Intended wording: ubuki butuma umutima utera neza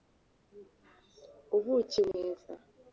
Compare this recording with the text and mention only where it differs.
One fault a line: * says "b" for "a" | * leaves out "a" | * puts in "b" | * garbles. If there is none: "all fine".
* leaves out "butuma umutima utera"